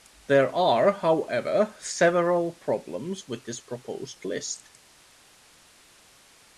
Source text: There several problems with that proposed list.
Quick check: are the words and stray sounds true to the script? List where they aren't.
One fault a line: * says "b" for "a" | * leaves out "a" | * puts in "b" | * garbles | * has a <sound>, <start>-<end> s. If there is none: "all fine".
* puts in "are however"
* says "this" for "that"